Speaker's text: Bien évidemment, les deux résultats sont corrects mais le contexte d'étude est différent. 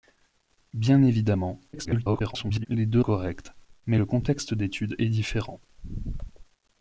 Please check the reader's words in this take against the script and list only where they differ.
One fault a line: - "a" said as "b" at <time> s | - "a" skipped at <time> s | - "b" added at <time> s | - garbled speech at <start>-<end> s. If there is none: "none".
- garbled speech at 1.7-2.7 s
- "résultats sont" skipped at 3.0 s